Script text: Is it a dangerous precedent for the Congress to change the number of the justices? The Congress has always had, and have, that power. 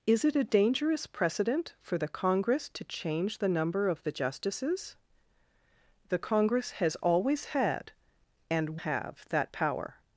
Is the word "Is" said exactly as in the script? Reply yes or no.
yes